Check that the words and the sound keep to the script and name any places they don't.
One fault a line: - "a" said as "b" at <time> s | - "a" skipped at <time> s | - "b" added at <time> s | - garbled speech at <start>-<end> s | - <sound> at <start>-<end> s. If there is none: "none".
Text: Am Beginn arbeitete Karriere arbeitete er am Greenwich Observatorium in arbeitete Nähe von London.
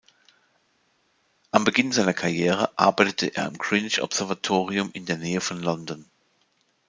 - "arbeitete" said as "seiner" at 1.9 s
- "arbeitete" said as "der" at 5.0 s